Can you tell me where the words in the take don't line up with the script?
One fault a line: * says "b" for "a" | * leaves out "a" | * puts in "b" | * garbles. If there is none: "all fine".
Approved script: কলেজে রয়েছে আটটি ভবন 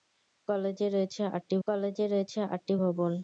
* puts in "কলেজে রয়েছে আটটি"